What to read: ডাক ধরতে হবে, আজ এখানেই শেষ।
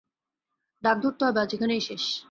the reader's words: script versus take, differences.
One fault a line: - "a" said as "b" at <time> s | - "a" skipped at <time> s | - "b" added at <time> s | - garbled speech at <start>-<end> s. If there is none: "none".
none